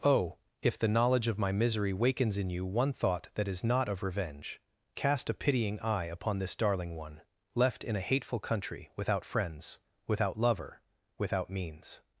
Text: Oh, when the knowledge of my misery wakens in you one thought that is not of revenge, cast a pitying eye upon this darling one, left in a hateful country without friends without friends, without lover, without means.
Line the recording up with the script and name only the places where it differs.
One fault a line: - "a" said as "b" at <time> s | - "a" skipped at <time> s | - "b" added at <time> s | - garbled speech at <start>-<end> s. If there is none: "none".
- "when" said as "if" at 0.6 s
- "friends without" skipped at 10.4 s